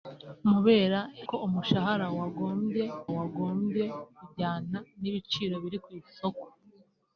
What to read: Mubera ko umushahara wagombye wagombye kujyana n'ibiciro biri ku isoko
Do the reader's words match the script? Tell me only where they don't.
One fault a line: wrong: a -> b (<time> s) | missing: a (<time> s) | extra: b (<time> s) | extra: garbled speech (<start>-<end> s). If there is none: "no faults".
no faults